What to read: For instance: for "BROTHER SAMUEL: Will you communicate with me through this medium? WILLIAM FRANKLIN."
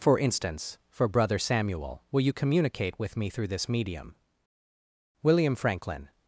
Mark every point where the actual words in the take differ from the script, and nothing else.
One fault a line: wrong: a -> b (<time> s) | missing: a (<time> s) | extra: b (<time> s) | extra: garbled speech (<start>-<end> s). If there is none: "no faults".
no faults